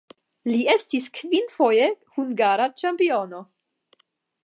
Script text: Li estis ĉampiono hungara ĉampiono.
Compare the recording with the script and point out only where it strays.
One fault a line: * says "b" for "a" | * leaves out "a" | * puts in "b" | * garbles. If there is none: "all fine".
* says "kvinfoje" for "ĉampiono"